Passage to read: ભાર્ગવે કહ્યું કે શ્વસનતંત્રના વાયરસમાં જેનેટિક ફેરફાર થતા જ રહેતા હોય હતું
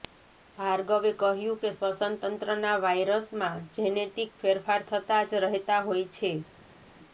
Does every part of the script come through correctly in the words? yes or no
no